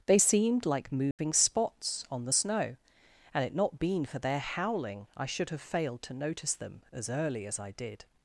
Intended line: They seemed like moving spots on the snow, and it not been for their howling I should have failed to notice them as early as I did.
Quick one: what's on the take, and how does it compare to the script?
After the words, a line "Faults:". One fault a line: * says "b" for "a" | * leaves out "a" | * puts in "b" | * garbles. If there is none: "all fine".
They seemed like moving spots on the snow, and it not been for their howling I should have failed to notice them as early as I did.
Faults:
all fine